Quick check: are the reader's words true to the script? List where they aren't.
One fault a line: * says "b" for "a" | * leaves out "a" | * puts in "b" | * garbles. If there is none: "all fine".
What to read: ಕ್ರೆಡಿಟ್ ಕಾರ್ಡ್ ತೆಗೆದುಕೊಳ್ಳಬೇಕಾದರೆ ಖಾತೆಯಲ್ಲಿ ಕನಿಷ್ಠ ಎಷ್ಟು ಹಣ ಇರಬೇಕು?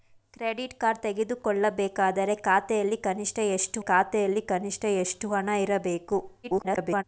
* puts in "ಖಾತೆಯಲ್ಲಿ ಕನಿಷ್ಠ ಎಷ್ಟು"
* garbles